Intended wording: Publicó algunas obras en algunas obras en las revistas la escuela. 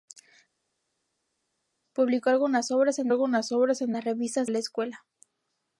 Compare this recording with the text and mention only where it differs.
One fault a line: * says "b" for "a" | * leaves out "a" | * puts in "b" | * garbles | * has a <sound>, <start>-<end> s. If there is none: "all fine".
all fine